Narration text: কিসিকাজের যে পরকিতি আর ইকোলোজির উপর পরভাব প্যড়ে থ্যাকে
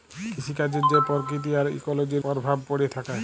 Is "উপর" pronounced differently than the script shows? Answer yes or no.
yes